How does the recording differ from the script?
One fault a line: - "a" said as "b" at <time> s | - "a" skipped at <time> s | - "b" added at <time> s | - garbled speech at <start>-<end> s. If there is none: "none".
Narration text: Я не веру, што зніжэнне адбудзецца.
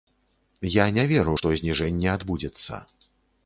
none